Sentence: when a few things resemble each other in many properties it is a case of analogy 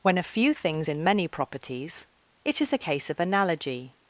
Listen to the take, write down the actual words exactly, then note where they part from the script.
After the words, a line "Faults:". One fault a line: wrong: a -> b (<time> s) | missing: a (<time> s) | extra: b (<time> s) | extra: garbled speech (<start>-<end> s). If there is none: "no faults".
when a few things in many properties it is a case of analogy
Faults:
missing: resemble each other (0.9 s)